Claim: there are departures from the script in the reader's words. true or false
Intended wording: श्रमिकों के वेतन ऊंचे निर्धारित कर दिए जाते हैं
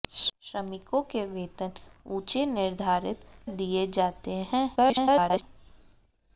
true